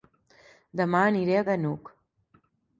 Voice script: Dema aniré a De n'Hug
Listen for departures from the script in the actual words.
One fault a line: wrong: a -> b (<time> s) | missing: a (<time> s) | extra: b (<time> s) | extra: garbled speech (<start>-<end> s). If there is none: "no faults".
no faults